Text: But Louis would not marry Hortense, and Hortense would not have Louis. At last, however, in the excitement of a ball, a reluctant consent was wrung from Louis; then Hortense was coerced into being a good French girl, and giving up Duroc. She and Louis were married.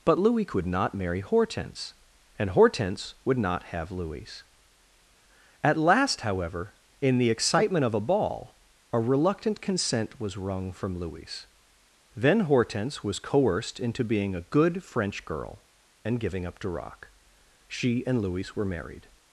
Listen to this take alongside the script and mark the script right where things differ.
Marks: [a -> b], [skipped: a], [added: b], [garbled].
But Louis [would -> could] not marry Hortense, and Hortense would not have Louis. At last, however, in the excitement of a ball, a reluctant consent was wrung from Louis; then Hortense was coerced into being a good French girl, and giving up Duroc. She and Louis were married.